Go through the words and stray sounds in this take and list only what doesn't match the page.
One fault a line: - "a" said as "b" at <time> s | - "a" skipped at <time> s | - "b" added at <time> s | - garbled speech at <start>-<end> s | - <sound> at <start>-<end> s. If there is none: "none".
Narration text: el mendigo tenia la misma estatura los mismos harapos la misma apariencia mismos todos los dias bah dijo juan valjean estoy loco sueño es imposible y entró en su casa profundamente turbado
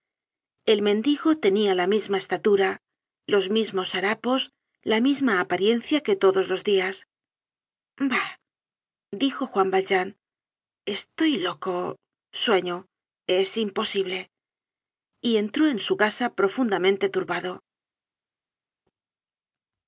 - "mismos" said as "que" at 6.0 s